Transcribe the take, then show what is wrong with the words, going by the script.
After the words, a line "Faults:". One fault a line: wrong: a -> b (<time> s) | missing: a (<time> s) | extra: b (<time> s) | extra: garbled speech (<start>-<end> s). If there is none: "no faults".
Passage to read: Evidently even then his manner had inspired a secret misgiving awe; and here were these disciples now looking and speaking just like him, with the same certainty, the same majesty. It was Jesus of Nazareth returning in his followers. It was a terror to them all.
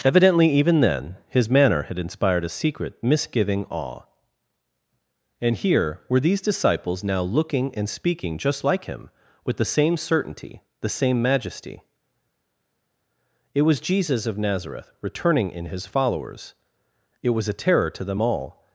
Evidently even then his manner had inspired a secret misgiving awe; and here were these disciples now looking and speaking just like him, with the same certainty, the same majesty. It was Jesus of Nazareth returning in his followers. It was a terror to them all.
Faults:
no faults